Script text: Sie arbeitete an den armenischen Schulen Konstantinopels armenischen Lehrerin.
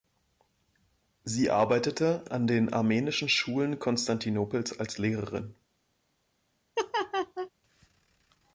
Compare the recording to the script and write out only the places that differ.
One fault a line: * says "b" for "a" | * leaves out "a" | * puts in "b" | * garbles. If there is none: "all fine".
* says "als" for "armenischen"